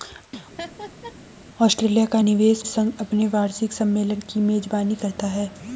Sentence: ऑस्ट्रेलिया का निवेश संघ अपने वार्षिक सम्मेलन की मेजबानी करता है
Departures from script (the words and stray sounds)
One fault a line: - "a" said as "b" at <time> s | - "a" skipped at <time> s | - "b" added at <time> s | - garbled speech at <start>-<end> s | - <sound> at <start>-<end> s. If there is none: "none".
- laugh at 0.6-1.2 s